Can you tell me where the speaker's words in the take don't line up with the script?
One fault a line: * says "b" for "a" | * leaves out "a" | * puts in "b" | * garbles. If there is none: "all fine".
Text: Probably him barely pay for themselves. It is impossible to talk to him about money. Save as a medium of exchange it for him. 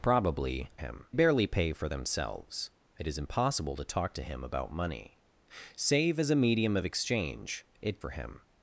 all fine